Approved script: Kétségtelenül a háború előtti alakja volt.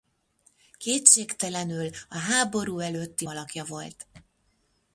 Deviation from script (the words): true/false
false